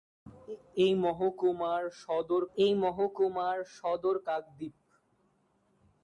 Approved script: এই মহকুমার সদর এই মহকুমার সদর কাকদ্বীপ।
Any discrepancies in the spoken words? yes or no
no